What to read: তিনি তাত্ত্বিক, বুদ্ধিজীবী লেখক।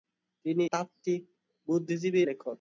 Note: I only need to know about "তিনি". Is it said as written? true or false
true